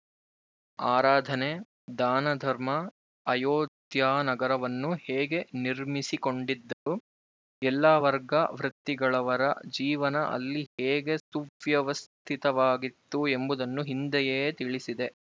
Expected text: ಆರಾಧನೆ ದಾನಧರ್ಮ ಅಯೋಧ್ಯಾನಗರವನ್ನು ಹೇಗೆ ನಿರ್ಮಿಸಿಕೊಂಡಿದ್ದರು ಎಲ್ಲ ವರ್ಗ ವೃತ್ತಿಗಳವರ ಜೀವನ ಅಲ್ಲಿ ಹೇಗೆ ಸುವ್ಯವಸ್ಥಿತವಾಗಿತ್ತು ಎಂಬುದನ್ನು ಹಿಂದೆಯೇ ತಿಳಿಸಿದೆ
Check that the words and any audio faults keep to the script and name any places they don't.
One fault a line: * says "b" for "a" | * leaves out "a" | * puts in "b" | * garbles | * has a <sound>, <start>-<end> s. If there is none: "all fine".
* has a dropout, 6.7-6.9 s